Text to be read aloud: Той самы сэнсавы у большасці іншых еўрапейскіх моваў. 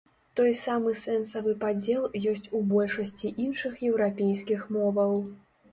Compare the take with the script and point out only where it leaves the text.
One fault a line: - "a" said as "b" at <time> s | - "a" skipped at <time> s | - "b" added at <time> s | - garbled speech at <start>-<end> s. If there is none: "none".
- "падзел ёсць" added at 1.6 s